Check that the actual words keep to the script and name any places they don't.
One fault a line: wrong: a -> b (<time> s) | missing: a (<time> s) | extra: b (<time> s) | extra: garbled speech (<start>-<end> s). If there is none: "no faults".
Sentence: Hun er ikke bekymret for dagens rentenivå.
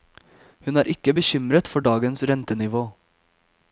no faults